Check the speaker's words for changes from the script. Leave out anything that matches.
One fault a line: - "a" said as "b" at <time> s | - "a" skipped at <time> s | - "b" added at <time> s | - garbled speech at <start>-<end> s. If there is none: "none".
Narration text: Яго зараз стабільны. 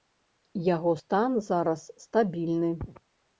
- "стан" added at 1.0 s